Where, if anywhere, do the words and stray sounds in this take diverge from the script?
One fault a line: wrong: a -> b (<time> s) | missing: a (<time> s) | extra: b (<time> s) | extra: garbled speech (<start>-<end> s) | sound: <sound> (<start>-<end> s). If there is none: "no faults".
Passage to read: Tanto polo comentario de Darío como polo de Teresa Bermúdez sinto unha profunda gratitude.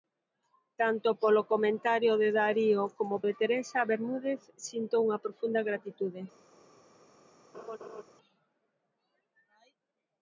missing: polo (3.1 s)
sound: laugh (7.5-8.0 s)